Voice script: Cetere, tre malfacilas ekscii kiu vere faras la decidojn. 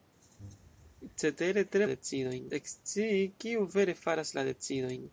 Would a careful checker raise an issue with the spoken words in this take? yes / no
yes